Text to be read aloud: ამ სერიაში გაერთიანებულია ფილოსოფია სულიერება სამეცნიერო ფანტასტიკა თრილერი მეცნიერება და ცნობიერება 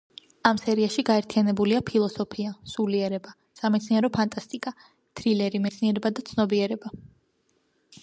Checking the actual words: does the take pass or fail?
pass